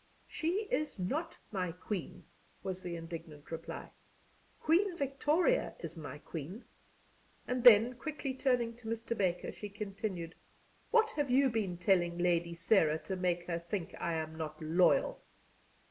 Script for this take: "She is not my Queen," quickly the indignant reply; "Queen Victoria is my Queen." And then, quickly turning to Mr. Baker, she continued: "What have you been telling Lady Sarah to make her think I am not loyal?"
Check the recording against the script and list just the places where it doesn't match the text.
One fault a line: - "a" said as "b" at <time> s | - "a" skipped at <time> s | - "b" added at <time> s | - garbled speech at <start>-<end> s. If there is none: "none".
- "quickly" said as "was" at 2.6 s